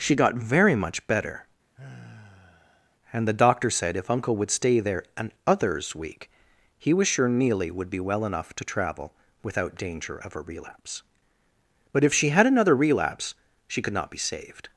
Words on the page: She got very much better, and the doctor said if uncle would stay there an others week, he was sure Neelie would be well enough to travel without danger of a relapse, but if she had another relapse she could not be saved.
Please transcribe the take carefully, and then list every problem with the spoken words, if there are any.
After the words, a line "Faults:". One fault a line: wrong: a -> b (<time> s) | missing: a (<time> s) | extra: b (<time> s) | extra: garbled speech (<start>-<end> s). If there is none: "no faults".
She got very much better, and the doctor said if uncle would stay there an others week, he was sure Neelie would be well enough to travel without danger of a relapse, but if she had another relapse she could not be saved.
Faults:
no faults